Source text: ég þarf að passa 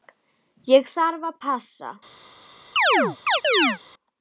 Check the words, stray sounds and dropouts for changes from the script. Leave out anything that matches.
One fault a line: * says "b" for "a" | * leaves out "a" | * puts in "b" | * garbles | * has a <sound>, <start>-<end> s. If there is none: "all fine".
* has a chirp, 2.8-3.8 s